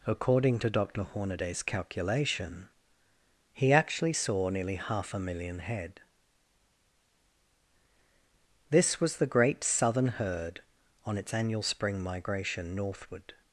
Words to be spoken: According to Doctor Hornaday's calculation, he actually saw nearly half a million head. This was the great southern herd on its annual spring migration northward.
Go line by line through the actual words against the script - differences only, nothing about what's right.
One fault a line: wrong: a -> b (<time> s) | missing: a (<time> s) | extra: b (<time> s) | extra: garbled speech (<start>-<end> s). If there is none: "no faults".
no faults